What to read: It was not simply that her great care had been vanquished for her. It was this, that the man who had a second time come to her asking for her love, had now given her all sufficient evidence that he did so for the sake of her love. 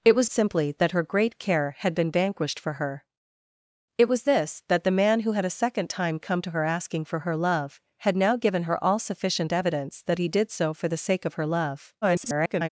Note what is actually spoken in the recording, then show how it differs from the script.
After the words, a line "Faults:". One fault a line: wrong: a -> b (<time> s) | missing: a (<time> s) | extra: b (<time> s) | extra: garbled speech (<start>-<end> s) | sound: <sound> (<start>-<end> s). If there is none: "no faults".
It was simply that her great care had been vanquished for her. It was this, that the man who had a second time come to her asking for her love, had now given her all sufficient evidence that he did so for the sake of her love. [garbled]
Faults:
missing: not (0.3 s)
extra: garbled speech (12.0-12.7 s)